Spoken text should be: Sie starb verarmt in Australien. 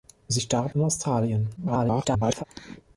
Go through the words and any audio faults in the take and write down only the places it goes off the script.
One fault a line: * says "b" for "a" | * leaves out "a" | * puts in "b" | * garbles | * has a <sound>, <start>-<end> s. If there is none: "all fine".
* leaves out "verarmt"
* garbles